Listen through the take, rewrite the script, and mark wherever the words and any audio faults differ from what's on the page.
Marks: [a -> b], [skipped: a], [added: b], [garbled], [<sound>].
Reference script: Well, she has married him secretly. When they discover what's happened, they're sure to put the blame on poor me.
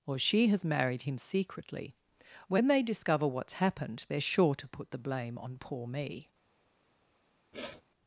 [Well, -> Or] she has married him secretly. When they discover what's happened, they're sure to put the blame on poor me. [sniff]